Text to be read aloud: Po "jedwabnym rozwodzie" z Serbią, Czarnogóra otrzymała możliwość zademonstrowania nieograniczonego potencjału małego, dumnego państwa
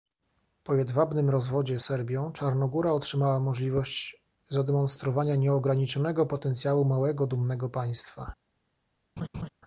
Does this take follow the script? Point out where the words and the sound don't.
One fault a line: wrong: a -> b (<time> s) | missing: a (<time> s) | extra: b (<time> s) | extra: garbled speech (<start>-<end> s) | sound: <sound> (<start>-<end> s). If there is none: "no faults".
missing: z (1.8 s)
sound: laugh (9.2-9.5 s)